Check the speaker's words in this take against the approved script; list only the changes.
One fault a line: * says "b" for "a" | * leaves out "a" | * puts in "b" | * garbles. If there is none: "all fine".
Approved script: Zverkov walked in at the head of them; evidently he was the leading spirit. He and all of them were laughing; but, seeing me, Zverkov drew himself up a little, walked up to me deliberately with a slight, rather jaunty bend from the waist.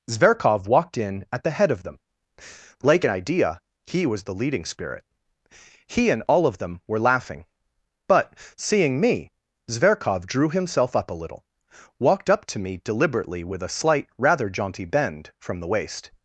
* says "like an idea" for "evidently"